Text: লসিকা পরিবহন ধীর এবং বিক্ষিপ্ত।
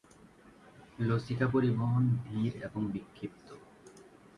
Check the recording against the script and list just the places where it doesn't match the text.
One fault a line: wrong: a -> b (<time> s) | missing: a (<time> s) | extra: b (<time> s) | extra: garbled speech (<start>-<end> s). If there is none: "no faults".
no faults